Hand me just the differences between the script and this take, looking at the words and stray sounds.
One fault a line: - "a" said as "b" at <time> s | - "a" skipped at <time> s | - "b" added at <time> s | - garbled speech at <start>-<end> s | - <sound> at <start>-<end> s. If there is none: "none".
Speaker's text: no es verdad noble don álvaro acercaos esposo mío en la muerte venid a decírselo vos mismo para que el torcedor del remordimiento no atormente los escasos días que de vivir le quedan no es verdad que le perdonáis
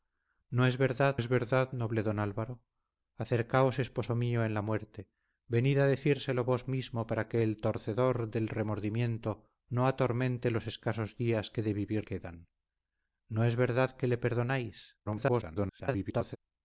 - "es verdad" added at 1.1 s
- "le" skipped at 12.1 s
- garbled speech at 15.0-16.4 s